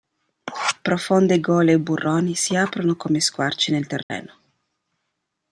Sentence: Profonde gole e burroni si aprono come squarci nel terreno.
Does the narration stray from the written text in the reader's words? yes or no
no